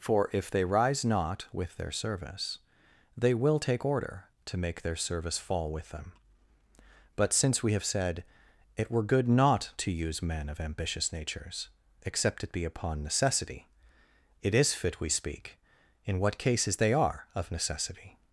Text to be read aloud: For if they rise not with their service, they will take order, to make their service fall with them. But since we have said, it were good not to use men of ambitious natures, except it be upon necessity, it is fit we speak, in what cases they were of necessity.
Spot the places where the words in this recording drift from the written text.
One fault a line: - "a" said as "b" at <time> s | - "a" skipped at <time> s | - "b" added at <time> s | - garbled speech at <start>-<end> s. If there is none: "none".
- "were" said as "are" at 16.9 s